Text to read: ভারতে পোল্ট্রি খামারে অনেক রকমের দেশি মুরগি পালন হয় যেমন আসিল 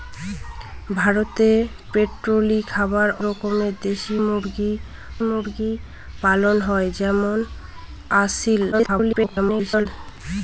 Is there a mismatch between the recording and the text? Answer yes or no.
yes